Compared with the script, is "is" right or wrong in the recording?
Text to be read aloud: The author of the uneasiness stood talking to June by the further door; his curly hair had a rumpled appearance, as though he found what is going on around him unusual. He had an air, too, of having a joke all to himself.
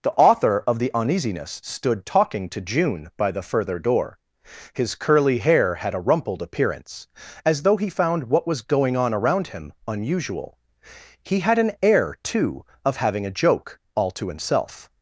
wrong